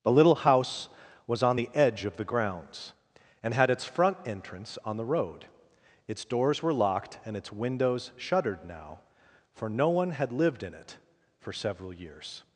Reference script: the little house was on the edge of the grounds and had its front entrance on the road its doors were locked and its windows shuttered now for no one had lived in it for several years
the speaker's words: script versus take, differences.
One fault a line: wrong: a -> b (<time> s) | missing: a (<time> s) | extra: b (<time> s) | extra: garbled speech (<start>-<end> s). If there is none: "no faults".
no faults